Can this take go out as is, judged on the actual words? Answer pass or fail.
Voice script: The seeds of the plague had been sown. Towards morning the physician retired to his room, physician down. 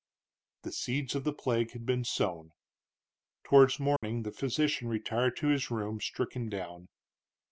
fail